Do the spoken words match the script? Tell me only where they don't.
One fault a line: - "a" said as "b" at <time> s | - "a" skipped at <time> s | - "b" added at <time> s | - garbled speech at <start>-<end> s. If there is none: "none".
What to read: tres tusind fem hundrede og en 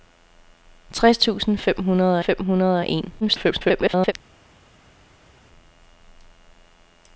- "fem hundrede" added at 2.2 s
- garbled speech at 3.2-4.1 s